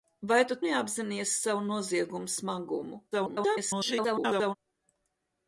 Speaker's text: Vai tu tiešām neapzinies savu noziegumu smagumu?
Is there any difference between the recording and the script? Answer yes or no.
yes